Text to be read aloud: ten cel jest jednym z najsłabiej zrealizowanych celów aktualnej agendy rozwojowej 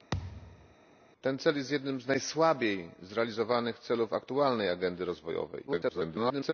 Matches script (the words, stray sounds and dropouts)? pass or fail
fail